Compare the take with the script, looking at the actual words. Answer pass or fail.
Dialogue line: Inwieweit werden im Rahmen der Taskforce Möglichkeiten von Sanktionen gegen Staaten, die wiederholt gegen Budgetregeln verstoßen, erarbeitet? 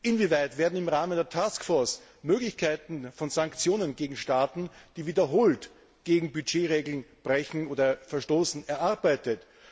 pass